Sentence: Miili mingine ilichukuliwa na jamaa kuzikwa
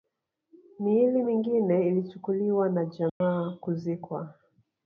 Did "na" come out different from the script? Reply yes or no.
no